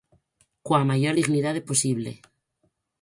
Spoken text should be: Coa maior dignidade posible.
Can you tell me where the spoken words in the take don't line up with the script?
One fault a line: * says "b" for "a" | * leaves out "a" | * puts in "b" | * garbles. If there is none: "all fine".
all fine